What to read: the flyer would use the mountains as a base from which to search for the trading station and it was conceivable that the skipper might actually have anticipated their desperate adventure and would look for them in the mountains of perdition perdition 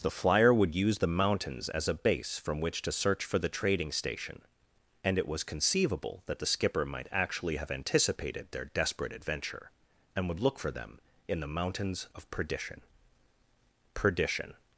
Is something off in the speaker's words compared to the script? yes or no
no